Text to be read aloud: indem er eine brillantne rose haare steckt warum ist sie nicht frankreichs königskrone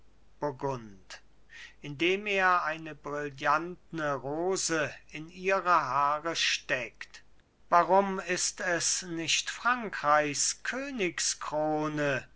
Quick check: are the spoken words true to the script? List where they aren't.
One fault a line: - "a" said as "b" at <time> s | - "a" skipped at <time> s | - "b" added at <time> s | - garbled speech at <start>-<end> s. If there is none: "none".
- "in ihre" added at 5.1 s
- "sie" said as "es" at 8.6 s